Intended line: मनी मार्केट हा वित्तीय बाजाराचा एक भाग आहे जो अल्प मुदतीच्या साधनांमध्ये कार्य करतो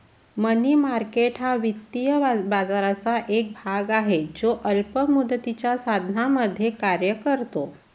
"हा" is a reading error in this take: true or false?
false